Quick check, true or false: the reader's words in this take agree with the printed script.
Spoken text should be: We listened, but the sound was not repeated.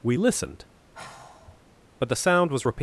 false